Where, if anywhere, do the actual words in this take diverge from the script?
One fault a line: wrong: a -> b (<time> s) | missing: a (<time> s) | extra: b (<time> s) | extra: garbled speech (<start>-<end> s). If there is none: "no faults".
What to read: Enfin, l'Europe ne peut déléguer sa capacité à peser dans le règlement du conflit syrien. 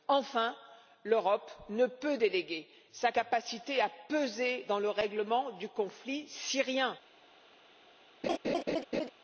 no faults